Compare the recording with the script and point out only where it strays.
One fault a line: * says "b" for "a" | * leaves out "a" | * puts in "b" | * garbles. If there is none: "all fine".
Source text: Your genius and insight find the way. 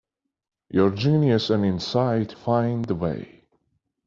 all fine